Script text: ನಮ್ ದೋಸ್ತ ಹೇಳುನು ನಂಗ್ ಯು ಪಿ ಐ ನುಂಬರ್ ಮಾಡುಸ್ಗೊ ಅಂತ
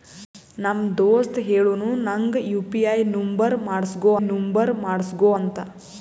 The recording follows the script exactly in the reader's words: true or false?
false